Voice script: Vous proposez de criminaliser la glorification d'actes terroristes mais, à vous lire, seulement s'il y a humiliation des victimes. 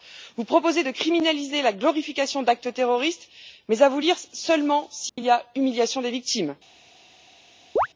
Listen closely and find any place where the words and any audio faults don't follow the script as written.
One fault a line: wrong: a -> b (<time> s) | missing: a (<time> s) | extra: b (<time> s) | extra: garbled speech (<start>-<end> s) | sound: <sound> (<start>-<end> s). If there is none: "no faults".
sound: dropout (5.1-5.2 s)
sound: chirp (7.8-7.9 s)